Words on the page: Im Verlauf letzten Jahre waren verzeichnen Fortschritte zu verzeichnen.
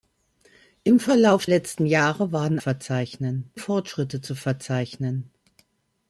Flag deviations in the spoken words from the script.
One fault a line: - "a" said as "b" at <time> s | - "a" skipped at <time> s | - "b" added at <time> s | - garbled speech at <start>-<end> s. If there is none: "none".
none